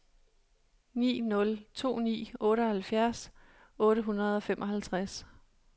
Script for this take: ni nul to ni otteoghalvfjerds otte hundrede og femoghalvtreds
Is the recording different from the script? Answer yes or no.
no